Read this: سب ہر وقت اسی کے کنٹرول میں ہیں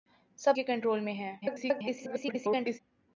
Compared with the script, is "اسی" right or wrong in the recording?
wrong